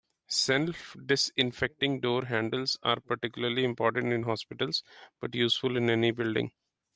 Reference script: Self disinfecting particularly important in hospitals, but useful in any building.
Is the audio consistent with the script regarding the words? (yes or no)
no